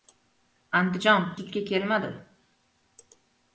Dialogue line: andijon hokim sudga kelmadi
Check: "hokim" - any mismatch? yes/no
yes